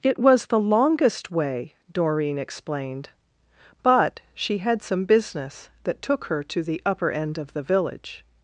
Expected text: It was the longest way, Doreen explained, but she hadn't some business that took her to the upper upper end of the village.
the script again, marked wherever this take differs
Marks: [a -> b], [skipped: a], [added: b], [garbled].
It was the longest way, Doreen explained, but she [hadn't -> had] some business that took her to the upper [skipped: upper] end of the village.